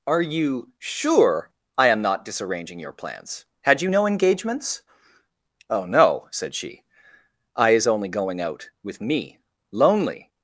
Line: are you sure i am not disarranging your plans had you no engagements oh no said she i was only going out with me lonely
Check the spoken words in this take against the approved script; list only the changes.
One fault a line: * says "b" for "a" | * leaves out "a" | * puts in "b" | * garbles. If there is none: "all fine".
* says "is" for "was"